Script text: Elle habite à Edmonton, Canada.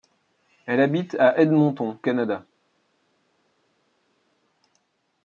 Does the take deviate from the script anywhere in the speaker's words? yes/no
no